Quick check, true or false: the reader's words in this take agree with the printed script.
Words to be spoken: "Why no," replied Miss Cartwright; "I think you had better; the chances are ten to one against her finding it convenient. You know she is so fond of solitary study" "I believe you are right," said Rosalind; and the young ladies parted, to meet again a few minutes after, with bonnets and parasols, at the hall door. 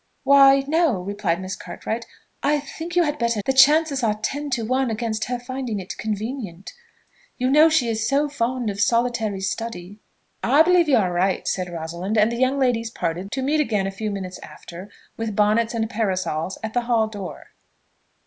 true